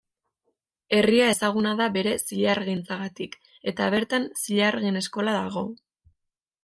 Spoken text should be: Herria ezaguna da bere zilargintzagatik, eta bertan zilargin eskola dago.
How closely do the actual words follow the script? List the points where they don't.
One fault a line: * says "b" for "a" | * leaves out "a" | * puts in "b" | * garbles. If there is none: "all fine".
all fine